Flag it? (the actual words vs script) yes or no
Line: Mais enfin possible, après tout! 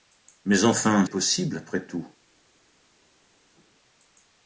no